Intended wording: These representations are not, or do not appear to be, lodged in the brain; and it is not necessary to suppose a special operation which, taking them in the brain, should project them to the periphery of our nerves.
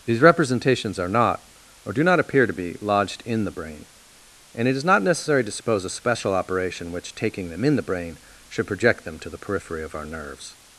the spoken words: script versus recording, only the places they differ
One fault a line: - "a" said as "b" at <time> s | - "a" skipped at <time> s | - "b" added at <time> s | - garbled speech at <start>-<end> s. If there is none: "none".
none